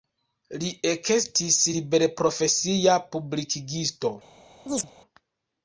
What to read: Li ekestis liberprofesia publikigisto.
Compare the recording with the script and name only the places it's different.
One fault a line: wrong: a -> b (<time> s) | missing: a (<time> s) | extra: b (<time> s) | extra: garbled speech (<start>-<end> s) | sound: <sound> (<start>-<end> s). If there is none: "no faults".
sound: chirp (4.7-4.9 s)